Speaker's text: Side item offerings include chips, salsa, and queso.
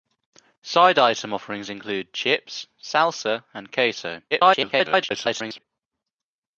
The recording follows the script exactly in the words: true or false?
false